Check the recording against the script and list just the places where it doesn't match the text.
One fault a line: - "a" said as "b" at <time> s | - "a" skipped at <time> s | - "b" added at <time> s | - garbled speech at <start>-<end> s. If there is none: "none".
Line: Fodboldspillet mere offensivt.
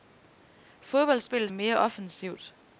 none